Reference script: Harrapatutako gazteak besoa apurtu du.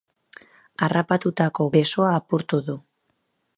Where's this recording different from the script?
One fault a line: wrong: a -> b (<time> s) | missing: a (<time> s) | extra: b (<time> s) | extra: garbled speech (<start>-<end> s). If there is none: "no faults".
missing: gazteak (1.7 s)